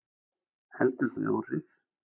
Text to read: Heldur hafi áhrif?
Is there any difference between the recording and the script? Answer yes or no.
no